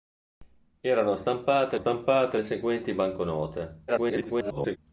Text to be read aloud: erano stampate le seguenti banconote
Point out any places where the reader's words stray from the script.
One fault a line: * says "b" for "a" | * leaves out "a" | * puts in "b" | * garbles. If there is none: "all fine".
* puts in "stampate"
* garbles